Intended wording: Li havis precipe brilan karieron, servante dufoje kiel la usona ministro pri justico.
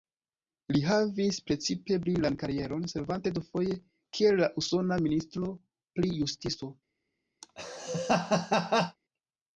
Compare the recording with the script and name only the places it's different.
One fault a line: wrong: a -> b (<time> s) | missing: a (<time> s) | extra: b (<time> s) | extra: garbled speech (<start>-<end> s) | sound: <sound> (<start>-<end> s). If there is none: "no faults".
sound: laugh (7.4-9.0 s)